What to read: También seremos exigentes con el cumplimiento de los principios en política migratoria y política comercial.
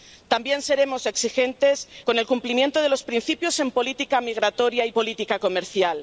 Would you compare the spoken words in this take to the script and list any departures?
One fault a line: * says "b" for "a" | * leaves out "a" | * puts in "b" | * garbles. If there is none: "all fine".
all fine